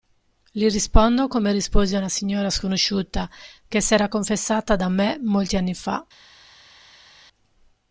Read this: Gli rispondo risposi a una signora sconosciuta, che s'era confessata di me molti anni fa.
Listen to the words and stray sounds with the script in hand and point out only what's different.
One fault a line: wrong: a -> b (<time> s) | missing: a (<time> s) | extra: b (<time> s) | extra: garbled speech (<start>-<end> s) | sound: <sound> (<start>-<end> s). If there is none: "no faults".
extra: come (1.3 s)
wrong: di -> da (4.8 s)